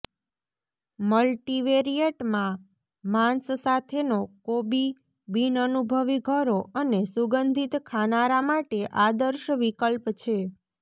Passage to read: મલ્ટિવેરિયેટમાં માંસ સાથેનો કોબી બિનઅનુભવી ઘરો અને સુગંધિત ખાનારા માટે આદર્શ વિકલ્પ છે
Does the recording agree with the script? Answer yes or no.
yes